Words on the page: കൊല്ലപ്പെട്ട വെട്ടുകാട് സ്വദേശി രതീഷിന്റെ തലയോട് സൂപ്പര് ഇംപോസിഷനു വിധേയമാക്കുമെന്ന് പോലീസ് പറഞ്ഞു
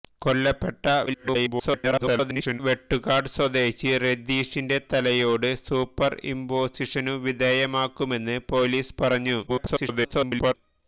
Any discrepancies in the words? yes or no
yes